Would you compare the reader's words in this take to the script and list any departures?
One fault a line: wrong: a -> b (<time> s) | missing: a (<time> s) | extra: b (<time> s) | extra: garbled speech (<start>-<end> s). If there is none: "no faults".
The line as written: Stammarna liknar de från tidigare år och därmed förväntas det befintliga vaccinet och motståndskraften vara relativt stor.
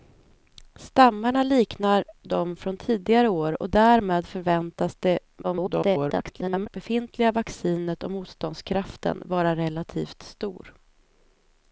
extra: garbled speech (5.4-6.7 s)